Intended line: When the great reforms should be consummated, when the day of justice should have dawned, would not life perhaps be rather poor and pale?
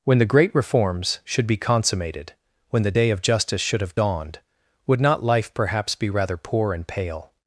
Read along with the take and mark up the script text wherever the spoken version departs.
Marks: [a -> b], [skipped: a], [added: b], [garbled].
When the great reforms should be consummated, when the day of justice should have dawned, would not life perhaps be rather poor and pale?